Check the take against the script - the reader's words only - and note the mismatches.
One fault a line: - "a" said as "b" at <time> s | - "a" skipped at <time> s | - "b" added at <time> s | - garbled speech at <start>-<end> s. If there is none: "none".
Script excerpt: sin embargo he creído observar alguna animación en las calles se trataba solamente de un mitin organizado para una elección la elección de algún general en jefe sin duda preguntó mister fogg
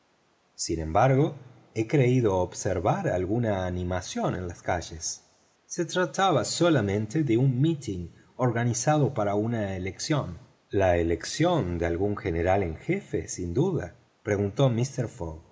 none